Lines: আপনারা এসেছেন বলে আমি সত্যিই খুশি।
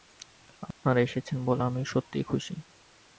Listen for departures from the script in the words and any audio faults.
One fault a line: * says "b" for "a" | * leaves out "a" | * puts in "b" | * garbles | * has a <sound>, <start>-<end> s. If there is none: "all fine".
* has a dropout, 0.7-0.8 s